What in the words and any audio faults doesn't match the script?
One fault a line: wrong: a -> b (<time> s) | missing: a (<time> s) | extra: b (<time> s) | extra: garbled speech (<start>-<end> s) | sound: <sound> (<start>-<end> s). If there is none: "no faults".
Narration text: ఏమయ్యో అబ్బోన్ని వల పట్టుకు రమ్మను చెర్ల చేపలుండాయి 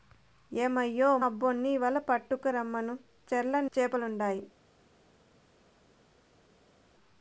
no faults